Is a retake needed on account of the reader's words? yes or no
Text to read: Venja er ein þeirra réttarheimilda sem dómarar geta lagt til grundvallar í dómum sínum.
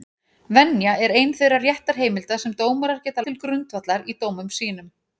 yes